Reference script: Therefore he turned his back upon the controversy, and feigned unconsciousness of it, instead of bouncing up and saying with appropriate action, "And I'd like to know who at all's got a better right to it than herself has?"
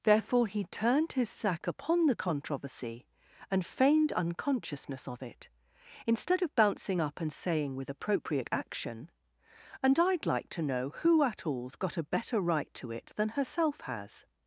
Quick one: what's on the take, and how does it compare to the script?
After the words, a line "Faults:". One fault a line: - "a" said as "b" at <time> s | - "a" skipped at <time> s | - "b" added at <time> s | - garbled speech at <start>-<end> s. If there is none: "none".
Therefore he turned his sack upon the controversy, and feigned unconsciousness of it, instead of bouncing up and saying with appropriate action, "And I'd like to know who at all's got a better right to it than herself has?"
Faults:
- "back" said as "sack" at 1.3 s